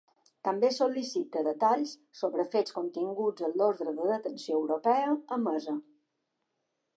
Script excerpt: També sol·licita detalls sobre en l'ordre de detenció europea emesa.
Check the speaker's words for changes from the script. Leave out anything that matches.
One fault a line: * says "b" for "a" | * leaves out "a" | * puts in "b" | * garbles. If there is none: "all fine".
* puts in "fets continguts"